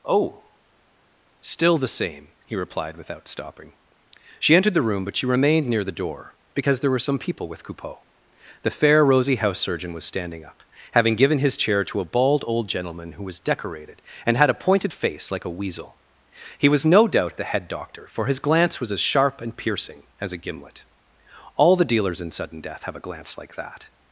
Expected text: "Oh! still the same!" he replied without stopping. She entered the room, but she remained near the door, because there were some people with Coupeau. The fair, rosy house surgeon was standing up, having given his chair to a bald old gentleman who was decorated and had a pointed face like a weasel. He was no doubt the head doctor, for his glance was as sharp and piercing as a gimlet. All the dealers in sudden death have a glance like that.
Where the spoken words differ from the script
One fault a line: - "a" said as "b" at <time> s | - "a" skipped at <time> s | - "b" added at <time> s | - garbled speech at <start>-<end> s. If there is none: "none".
none